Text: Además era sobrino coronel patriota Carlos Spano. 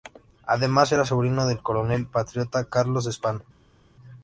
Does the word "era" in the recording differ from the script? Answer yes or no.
no